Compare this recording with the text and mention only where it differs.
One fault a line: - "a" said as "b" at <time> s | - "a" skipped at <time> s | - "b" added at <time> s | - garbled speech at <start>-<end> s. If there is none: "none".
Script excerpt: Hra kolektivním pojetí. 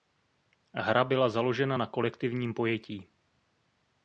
- "byla založena na" added at 1.0 s